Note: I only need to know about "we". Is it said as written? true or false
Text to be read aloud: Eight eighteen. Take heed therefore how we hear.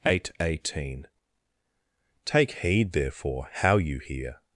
false